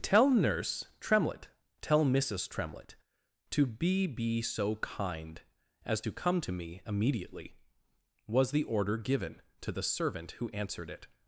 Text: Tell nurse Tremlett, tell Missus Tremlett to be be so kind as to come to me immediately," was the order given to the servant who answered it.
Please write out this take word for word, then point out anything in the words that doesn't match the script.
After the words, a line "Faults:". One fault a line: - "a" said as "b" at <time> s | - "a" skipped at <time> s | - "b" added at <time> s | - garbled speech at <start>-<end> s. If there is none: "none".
Tell nurse Tremlett, tell Missus Tremlett to be be so kind as to come to me immediately," was the order given to the servant who answered it.
Faults:
none